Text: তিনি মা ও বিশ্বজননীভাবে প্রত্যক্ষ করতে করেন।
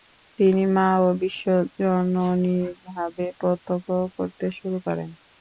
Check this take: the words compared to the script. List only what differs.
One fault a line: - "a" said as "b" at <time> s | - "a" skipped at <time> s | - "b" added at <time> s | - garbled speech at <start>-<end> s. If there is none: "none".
- "শুরু" added at 4.6 s